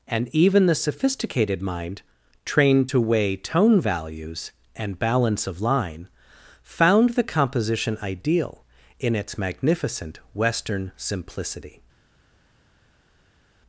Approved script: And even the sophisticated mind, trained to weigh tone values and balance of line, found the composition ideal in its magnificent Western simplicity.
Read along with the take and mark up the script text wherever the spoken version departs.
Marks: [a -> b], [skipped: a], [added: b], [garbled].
And even the sophisticated mind, trained to weigh tone values and balance of line, found the composition ideal in its magnificent Western simplicity.